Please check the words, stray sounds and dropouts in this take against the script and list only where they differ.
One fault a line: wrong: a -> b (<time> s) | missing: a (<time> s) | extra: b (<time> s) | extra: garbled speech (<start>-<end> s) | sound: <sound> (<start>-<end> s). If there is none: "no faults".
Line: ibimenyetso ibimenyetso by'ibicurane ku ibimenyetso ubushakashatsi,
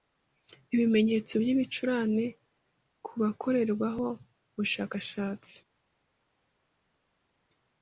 missing: ibimenyetso (1.3 s)
wrong: ibimenyetso -> bakorerwaho (3.2 s)